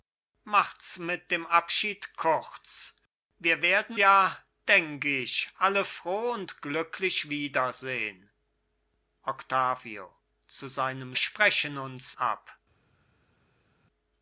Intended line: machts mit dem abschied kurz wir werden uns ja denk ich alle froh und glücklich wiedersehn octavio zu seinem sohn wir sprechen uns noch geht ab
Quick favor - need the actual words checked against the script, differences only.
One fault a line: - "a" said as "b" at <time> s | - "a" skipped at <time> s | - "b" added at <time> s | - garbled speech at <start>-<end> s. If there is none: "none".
- "uns" skipped at 4.0 s
- "sohn wir" skipped at 11.1 s
- "noch geht" skipped at 12.1 s